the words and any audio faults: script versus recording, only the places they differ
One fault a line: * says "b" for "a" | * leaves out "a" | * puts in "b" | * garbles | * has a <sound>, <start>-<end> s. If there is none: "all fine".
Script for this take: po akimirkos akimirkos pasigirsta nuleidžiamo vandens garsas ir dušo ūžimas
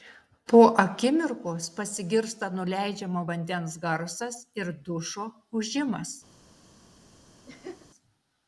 * leaves out "akimirkos"
* has a laugh, 7.5-7.9 s